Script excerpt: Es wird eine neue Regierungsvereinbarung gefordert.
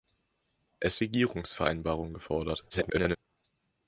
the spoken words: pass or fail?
fail